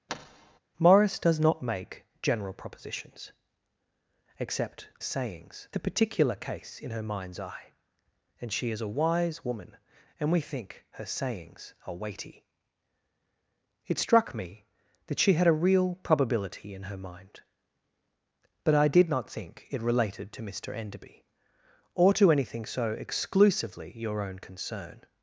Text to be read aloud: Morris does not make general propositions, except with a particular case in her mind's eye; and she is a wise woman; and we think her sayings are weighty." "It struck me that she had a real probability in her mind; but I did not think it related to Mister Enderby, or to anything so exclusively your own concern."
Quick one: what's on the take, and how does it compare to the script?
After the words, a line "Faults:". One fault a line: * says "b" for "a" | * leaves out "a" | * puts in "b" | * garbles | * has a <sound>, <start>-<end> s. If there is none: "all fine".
Morris does not make general propositions, except sayings a particular case in her mind's eye; and she is a wise woman; and we think her sayings are weighty." "It struck me that she had a real probability in her mind; but I did not think it related to Mister Enderby, or to anything so exclusively your own concern."
Faults:
* has a thud, 0.1-0.6 s
* says "sayings" for "with"